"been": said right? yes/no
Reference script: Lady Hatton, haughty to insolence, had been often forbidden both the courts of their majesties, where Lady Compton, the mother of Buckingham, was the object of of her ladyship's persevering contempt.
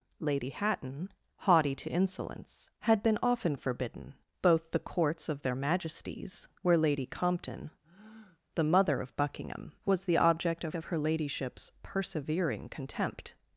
yes